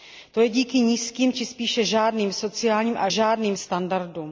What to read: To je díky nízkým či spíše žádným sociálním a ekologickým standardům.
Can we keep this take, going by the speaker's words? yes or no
no